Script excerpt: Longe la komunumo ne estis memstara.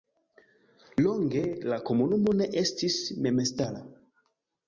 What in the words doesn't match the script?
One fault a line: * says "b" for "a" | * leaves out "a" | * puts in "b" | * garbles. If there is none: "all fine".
all fine